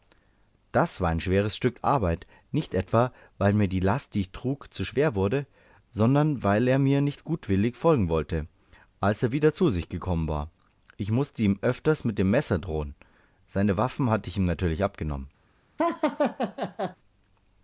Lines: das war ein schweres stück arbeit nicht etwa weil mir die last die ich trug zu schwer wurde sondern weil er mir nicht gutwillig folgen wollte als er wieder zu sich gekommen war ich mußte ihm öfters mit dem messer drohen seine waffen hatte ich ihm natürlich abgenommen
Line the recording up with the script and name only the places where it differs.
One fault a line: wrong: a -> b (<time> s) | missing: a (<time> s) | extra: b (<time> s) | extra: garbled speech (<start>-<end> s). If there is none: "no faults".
no faults